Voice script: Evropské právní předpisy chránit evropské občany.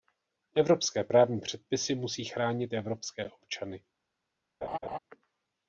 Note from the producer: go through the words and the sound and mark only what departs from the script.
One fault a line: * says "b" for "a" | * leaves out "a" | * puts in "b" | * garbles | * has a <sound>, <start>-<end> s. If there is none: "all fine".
* puts in "musí"
* has a laugh, 4.6-5.0 s